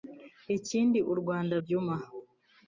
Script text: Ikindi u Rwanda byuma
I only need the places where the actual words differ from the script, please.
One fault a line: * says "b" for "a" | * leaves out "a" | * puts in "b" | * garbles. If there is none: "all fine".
all fine